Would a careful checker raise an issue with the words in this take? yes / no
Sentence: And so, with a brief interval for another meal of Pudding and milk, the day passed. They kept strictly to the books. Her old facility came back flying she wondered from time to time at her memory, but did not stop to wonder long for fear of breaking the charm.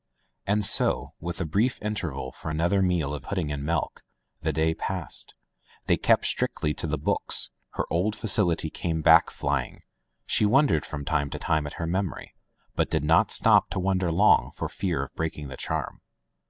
no